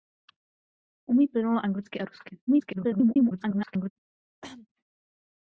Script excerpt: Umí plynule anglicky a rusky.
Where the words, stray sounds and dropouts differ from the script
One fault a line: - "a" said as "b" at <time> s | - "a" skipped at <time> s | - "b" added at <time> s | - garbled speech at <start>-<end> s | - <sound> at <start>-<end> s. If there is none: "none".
- garbled speech at 2.5-3.9 s
- cough at 4.4-4.7 s